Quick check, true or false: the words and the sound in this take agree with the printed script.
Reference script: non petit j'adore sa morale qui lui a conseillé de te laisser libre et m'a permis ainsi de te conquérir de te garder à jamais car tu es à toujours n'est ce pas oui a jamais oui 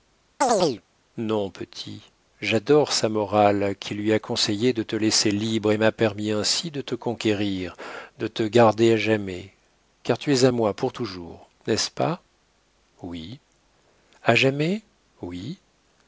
false